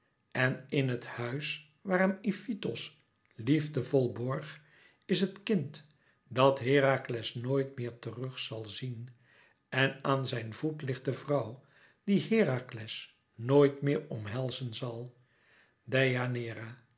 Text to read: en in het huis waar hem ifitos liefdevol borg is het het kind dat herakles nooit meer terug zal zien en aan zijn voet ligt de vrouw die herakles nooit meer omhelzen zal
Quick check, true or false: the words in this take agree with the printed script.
false